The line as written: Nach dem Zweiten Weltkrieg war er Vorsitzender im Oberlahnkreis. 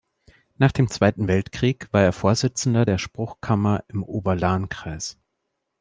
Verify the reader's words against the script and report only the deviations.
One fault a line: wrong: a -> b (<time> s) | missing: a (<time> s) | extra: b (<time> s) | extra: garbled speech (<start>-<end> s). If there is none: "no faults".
extra: der Spruchkammer (2.8 s)